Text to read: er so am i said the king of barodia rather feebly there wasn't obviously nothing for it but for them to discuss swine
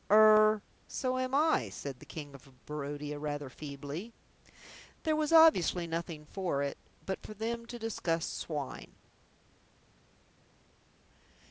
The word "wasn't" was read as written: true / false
false